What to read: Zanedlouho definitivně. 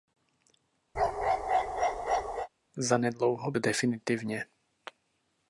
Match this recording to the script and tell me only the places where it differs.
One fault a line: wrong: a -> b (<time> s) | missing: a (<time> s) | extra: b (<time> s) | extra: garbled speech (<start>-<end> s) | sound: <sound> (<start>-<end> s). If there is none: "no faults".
sound: bark (0.9-2.5 s)